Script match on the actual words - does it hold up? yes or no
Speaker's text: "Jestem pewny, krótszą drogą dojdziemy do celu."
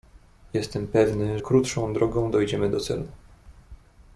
yes